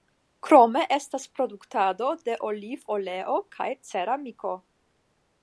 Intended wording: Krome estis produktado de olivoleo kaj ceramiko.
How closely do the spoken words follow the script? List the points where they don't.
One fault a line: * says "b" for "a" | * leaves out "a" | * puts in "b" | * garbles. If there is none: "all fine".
* says "estas" for "estis"